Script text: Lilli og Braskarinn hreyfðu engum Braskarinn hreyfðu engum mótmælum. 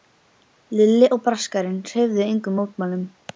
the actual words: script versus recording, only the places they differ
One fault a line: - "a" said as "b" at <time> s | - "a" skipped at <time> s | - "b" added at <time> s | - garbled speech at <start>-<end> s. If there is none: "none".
- "Braskarinn hreyfðu engum" skipped at 2.6 s